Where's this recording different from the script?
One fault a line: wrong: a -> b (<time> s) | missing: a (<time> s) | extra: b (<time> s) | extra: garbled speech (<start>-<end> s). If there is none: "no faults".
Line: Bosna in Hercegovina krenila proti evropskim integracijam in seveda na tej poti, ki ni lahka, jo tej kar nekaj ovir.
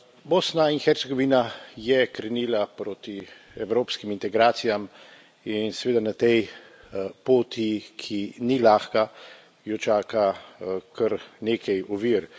extra: je (1.8 s)
wrong: tej -> čaka (9.8 s)